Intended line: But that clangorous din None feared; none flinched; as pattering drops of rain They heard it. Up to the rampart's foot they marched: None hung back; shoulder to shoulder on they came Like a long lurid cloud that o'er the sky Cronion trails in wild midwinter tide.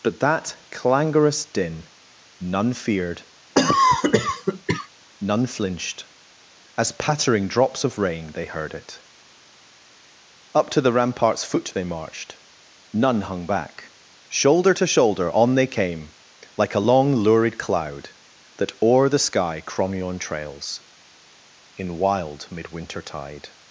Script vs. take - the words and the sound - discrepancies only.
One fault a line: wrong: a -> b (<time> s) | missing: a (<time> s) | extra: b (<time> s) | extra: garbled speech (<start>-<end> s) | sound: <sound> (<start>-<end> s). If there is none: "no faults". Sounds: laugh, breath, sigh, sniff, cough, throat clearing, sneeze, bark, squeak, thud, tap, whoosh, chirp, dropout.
sound: cough (3.5-4.9 s)